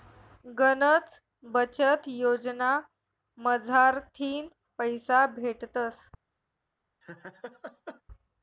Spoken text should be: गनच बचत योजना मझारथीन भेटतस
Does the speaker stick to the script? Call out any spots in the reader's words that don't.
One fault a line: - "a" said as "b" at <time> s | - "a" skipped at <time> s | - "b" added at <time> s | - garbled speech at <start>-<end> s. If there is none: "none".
- "पैसा" added at 4.8 s